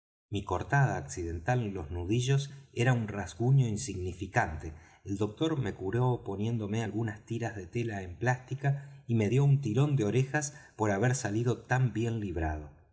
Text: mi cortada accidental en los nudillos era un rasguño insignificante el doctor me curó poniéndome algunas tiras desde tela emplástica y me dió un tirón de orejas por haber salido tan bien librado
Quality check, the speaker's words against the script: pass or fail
fail